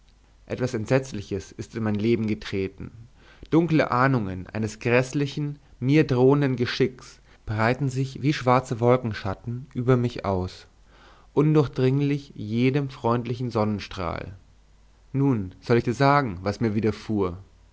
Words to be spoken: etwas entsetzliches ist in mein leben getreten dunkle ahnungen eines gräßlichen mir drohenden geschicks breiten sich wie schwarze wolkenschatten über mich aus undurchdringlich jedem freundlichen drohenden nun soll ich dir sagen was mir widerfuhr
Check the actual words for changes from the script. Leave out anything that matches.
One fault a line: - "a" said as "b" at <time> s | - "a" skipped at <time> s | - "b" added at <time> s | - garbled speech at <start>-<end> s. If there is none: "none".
- "drohenden" said as "sonnenstrahl" at 13.5 s